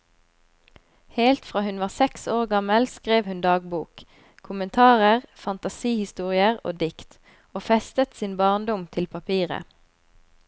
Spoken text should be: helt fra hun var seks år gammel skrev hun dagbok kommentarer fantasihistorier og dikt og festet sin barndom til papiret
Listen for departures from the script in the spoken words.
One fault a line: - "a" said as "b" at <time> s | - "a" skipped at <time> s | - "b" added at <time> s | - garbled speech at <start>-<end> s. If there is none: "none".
none